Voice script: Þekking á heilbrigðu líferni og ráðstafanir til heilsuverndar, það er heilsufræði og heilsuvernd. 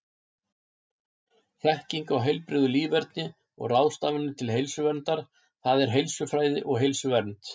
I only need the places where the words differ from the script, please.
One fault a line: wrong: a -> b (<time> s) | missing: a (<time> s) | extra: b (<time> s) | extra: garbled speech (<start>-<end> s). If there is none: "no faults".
no faults